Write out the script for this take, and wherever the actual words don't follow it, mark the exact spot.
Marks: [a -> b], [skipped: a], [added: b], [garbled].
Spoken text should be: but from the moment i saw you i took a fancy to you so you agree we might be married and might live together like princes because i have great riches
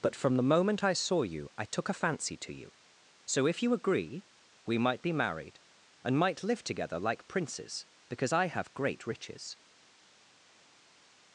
but from the moment i saw you i took a fancy to you so [added: if] you agree we might be married and might live together like princes because i have great riches